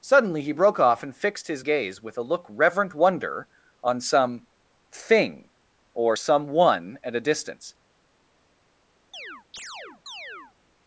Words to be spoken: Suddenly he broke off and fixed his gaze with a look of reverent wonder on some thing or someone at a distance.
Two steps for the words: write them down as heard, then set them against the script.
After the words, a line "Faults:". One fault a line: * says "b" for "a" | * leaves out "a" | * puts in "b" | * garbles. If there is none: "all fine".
Suddenly he broke off and fixed his gaze with a look reverent wonder on some thing or someone at a distance.
Faults:
* leaves out "of"